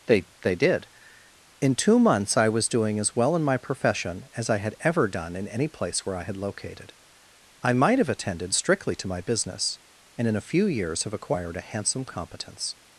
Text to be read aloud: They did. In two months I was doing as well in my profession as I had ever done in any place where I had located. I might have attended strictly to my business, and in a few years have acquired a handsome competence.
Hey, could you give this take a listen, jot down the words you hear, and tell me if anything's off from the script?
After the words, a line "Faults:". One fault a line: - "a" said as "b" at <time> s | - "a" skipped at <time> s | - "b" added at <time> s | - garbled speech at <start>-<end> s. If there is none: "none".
They they did. In two months I was doing as well in my profession as I had ever done in any place where I had located. I might have attended strictly to my business, and in a few years have acquired a handsome competence.
Faults:
- "they" added at 0.4 s